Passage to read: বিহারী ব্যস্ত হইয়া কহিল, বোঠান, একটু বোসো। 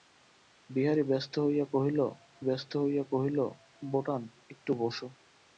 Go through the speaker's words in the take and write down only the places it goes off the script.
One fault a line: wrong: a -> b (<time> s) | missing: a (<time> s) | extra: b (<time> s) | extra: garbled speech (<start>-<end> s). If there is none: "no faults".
extra: ব্যস্ত হইয়া কহিল (2.5 s)